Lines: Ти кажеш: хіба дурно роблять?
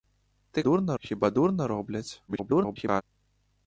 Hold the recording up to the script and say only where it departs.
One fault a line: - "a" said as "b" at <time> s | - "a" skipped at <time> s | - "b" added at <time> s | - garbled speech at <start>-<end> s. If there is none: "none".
- "кажеш" said as "дурно" at 0.6 s
- garbled speech at 2.3-3.0 s